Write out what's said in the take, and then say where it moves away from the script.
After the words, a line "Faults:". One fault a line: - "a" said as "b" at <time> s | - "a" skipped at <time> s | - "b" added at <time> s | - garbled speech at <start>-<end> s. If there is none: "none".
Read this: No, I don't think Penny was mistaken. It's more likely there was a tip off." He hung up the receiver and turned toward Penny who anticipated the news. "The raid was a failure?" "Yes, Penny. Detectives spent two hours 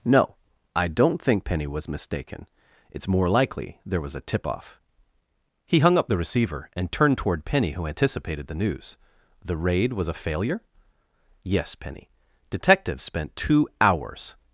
No, I don't think Penny was mistaken. It's more likely there was a tip off." He hung up the receiver and turned toward Penny who anticipated the news. "The raid was a failure?" "Yes, Penny. Detectives spent two hours
Faults:
none